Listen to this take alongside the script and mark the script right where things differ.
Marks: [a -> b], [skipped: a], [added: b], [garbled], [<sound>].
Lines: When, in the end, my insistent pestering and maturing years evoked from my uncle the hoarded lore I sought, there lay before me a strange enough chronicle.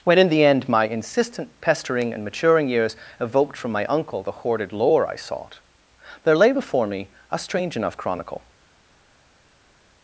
When, in the end, my insistent pestering and maturing years evoked from my uncle the hoarded lore I sought, there lay before me a strange enough chronicle.